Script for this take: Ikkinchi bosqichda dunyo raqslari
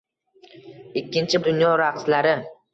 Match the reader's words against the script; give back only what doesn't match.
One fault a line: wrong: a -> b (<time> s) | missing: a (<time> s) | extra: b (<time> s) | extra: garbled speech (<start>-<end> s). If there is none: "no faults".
missing: bosqichda (1.4 s)